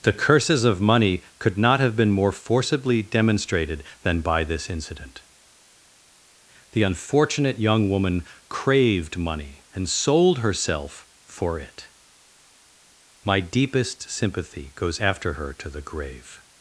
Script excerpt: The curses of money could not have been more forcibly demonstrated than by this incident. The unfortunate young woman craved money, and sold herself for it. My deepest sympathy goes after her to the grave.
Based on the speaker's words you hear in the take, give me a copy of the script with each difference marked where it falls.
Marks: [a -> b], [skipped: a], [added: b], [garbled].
The curses of money could not have been more forcibly demonstrated than by this incident. The unfortunate young woman craved money, and sold herself for it. My deepest sympathy goes after her to the grave.